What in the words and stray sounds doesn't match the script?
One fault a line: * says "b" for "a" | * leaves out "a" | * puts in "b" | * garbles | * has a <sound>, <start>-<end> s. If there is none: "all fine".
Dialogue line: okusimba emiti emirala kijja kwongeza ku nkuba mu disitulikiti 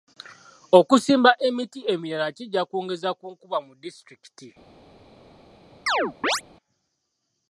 * has a chirp, 5.9-6.4 s